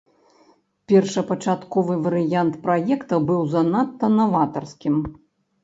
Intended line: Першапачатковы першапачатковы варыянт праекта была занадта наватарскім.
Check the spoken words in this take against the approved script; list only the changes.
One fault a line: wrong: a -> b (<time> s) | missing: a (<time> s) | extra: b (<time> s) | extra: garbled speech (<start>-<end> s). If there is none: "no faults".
missing: першапачатковы (2.0 s)
wrong: была -> быў (3.3 s)